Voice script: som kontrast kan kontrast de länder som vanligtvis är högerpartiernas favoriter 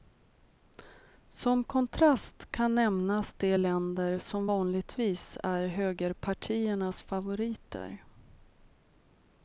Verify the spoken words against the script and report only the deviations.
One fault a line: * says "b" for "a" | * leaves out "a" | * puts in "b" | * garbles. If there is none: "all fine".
* says "nämnas" for "kontrast"